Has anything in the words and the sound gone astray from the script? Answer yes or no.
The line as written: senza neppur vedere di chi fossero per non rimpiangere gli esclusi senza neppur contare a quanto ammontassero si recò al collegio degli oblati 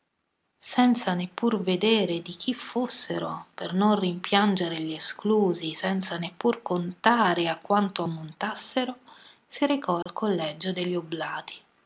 yes